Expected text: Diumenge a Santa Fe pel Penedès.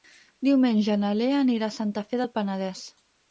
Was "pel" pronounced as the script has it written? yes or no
no